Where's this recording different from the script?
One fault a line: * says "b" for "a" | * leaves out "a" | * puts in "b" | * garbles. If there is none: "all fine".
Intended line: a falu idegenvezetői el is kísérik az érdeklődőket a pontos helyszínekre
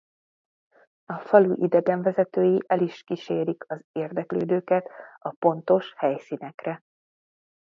all fine